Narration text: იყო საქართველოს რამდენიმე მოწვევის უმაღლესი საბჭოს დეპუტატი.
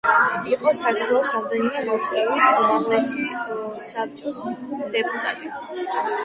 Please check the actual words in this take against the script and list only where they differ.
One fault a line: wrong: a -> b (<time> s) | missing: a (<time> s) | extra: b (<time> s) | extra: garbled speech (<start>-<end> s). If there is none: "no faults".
no faults